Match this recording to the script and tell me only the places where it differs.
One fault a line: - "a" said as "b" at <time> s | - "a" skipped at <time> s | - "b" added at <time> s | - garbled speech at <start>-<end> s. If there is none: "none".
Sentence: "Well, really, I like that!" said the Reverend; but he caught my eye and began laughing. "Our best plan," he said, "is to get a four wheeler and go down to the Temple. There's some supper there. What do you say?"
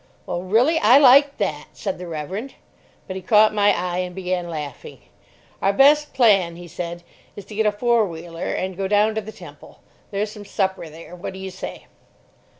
none